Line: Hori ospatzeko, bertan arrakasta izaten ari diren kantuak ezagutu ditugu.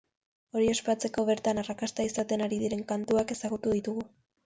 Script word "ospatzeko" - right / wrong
right